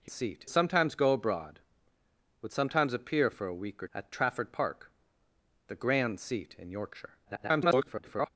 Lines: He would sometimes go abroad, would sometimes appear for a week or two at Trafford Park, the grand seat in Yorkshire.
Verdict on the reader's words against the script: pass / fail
fail